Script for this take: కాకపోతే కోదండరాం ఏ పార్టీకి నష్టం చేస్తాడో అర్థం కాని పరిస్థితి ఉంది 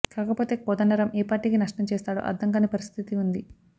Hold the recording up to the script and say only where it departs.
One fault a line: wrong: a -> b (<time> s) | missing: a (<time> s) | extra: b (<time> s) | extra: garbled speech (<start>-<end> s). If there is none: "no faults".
no faults